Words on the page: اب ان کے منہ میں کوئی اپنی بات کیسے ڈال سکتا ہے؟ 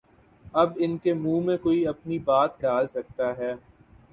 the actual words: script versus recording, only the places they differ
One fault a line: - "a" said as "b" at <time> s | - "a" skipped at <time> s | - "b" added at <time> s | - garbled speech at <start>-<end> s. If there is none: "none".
- "کیسے" skipped at 2.6 s